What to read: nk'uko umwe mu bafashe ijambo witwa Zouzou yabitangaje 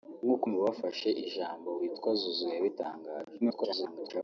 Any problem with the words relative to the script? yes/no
yes